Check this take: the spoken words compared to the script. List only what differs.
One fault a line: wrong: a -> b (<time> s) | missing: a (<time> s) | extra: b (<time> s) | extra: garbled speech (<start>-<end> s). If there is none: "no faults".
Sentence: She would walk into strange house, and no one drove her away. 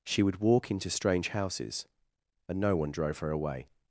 wrong: house -> houses (1.3 s)